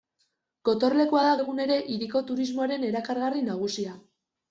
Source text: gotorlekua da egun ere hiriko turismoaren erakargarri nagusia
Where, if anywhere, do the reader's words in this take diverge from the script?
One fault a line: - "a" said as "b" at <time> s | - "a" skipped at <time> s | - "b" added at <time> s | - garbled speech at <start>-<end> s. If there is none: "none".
none